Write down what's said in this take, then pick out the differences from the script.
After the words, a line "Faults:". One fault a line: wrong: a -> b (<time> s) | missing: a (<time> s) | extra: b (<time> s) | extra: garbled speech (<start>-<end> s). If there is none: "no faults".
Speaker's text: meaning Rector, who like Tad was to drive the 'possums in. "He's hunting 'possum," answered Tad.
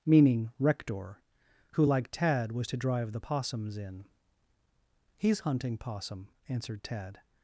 meaning Rector, who like Tad was to drive the 'possums in. "He's hunting 'possum," answered Tad.
Faults:
no faults